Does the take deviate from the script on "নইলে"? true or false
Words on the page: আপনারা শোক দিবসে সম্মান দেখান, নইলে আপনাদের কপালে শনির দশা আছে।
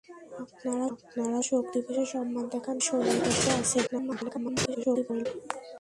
true